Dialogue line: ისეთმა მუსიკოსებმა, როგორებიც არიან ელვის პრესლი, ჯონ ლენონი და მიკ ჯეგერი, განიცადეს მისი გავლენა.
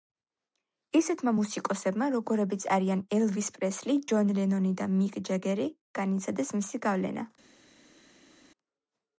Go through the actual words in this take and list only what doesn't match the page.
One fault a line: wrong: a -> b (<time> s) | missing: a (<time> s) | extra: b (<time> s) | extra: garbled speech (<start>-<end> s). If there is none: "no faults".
no faults